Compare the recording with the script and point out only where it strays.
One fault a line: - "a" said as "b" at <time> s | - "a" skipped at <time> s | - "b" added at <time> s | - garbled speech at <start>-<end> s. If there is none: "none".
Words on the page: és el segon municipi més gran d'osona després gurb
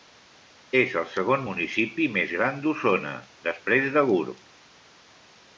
- "de" added at 4.0 s